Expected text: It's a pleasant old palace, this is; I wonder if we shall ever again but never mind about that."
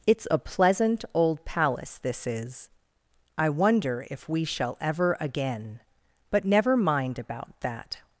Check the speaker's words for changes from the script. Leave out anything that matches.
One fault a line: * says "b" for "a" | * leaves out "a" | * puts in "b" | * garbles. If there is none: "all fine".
all fine